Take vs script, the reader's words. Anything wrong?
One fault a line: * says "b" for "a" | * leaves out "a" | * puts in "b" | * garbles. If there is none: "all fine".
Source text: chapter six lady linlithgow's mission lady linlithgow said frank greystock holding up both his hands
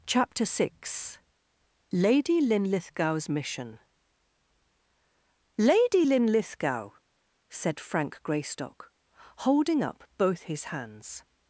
all fine